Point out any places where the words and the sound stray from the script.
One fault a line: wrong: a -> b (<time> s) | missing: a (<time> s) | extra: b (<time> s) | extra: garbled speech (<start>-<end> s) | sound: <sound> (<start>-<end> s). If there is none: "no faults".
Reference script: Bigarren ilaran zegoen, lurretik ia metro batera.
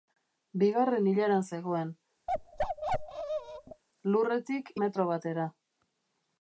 sound: bark (2.3-3.8 s)
missing: ia (4.7 s)